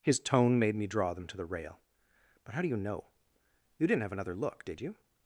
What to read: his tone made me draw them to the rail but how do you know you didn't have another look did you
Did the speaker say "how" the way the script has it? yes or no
yes